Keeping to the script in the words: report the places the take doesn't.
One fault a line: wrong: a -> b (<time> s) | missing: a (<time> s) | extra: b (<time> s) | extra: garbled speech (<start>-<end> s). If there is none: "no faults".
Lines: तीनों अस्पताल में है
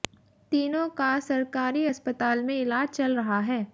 extra: का सरकारी (0.9 s)
extra: इलाज चल रहा (2.5 s)